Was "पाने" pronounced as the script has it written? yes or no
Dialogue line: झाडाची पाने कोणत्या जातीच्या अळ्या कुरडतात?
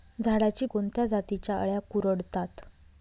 no